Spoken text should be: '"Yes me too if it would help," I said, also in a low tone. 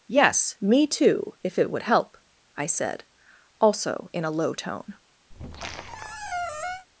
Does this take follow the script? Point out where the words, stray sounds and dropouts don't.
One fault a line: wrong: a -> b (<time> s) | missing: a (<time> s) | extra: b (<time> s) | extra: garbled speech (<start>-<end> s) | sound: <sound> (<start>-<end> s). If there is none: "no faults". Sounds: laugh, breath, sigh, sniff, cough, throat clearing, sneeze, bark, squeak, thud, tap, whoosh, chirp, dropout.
sound: squeak (5.3-6.9 s)